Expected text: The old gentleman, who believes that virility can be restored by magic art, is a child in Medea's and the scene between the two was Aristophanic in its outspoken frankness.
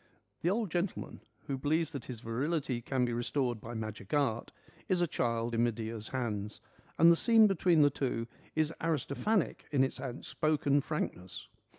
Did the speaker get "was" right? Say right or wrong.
wrong